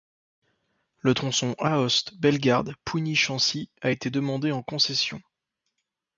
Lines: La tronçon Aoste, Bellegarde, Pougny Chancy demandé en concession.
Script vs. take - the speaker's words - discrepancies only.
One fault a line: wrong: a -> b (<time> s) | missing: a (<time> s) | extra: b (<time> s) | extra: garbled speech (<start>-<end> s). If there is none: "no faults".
wrong: La -> Le (1.0 s)
extra: a été (3.8 s)